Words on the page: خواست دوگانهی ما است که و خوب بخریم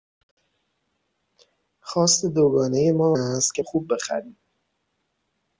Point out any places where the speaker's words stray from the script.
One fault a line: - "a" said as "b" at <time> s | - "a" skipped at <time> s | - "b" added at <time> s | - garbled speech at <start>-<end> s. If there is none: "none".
none